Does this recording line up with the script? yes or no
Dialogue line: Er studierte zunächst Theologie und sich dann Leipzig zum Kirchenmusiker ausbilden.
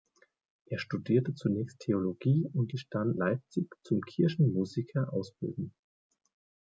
yes